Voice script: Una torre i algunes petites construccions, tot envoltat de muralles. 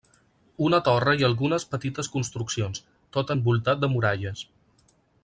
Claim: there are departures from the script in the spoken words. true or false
false